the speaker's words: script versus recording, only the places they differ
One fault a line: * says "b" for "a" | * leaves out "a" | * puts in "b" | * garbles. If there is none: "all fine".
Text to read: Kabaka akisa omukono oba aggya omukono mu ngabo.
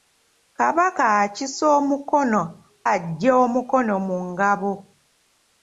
* leaves out "oba"